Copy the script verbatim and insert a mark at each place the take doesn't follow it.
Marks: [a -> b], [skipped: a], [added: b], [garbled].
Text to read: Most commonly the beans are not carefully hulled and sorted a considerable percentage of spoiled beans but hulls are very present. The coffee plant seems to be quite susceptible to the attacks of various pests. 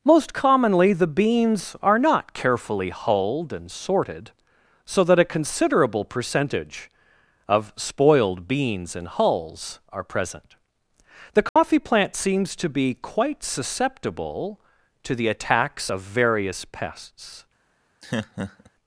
Most commonly the beans are not carefully hulled and sorted [added: so that] a considerable percentage of spoiled beans [but -> and] hulls are [skipped: very] present. The coffee plant seems to be quite susceptible to the attacks of various pests.